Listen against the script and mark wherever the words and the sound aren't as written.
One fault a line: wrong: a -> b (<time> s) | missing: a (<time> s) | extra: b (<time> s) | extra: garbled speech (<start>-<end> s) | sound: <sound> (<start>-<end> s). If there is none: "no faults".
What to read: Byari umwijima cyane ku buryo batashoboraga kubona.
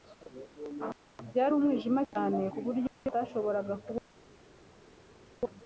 no faults